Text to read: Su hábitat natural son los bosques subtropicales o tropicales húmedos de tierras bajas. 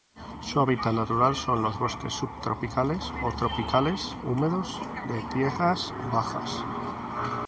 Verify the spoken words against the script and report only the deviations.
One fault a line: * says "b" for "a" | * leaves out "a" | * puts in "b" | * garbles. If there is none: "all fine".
all fine